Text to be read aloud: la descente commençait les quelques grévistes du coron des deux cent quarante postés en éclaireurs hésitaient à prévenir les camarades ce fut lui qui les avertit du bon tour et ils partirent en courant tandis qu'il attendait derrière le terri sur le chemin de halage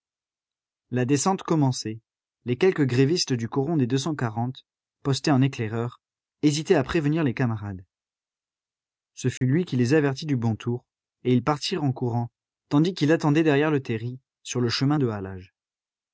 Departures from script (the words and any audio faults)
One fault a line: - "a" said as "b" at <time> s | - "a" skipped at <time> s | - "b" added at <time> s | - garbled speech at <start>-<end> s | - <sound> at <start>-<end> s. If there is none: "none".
- dropout at 9.4-9.4 s